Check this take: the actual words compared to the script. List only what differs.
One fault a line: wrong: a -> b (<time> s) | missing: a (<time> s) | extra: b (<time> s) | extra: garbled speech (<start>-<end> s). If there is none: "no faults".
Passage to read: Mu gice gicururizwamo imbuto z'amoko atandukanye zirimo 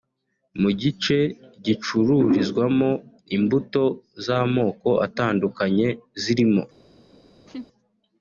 no faults